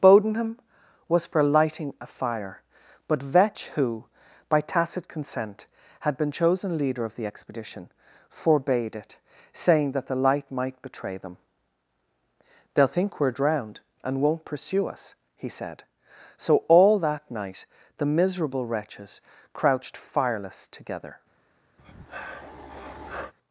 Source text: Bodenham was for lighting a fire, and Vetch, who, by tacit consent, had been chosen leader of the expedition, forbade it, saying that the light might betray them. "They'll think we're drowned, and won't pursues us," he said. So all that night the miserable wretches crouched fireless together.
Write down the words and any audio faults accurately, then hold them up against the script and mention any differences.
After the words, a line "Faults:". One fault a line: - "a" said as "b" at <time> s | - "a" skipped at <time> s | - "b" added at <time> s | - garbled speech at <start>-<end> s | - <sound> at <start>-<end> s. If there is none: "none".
Bodenham was for lighting a fire, but Vetch, who, by tacit consent, had been chosen leader of the expedition, forbade it, saying that the light might betray them. "They'll think we're drowned, and won't pursue us," he said. So all that night the miserable wretches crouched fireless together.
Faults:
- "and" said as "but" at 3.1 s
- "pursues" said as "pursue" at 14.4 s
- breath at 21.8-23.3 s